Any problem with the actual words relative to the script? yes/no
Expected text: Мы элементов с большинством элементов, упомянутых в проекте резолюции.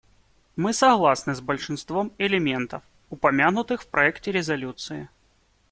yes